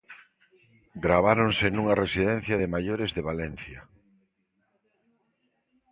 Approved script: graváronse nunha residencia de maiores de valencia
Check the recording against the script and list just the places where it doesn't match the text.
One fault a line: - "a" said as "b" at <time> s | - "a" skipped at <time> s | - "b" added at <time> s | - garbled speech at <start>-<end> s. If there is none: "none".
none